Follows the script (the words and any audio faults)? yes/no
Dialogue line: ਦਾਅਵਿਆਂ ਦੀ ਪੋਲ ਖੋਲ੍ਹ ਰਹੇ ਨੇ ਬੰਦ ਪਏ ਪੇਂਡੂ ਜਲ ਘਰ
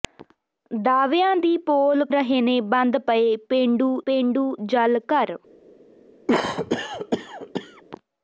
no